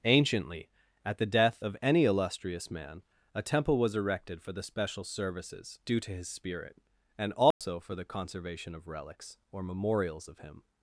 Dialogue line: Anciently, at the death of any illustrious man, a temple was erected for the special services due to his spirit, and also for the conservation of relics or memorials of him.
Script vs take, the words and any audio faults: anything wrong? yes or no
yes